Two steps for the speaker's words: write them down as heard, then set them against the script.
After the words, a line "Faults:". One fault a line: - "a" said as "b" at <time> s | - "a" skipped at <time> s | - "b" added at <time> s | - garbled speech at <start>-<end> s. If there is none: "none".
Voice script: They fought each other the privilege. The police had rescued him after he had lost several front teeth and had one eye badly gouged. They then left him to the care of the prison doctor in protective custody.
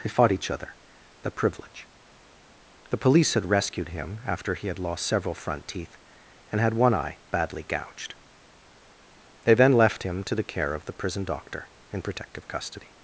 They fought each other the privilege. The police had rescued him after he had lost several front teeth and had one eye badly gouged. They then left him to the care of the prison doctor in protective custody.
Faults:
none